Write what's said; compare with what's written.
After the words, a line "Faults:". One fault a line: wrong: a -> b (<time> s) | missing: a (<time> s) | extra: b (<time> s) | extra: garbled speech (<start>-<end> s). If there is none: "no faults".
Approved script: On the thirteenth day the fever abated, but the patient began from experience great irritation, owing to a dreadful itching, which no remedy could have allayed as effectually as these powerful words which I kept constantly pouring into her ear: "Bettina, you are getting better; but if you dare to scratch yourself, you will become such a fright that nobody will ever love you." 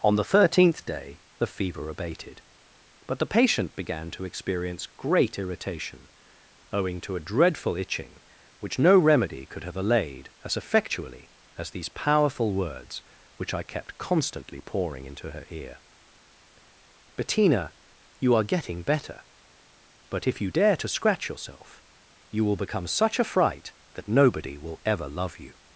On the thirteenth day the fever abated, but the patient began to experience great irritation, owing to a dreadful itching, which no remedy could have allayed as effectually as these powerful words which I kept constantly pouring into her ear: "Bettina, you are getting better; but if you dare to scratch yourself, you will become such a fright that nobody will ever love you."
Faults:
wrong: from -> to (4.1 s)